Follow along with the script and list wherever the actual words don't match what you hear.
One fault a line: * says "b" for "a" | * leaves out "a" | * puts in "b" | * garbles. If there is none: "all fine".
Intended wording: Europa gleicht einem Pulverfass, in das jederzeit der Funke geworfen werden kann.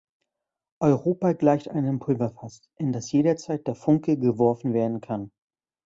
all fine